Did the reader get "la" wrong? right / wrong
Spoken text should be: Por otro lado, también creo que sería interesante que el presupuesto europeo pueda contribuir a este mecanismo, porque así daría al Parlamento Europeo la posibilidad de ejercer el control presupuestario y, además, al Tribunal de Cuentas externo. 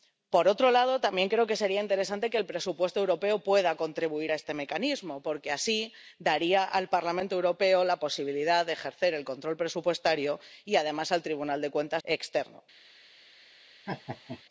right